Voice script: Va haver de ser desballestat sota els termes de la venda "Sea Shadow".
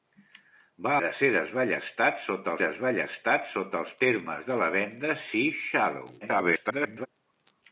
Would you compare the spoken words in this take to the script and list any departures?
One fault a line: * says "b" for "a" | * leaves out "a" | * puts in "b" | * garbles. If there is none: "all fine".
* leaves out "haver"
* puts in "desballestat sota"
* garbles